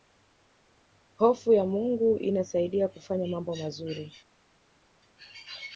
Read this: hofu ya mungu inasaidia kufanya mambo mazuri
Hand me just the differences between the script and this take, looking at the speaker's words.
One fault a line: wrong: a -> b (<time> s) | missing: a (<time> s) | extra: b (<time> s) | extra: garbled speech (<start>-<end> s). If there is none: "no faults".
no faults